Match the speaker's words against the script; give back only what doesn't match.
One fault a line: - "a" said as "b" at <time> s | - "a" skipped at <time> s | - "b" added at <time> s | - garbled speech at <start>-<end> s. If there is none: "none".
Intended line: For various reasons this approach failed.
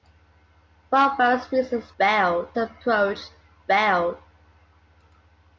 - "this" said as "failed" at 2.0 s